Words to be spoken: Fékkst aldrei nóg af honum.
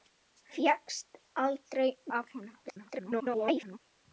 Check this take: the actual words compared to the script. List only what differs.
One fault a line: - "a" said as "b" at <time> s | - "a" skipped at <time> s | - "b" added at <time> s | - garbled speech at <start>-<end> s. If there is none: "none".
- "nóg" skipped at 1.9 s
- garbled speech at 2.7-3.8 s